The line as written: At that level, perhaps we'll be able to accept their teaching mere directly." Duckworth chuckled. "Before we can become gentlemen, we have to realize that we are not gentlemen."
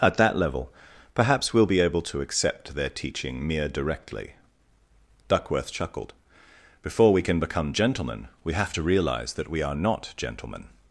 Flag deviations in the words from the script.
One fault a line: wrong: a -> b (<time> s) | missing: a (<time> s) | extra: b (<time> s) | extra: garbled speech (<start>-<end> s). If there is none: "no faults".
no faults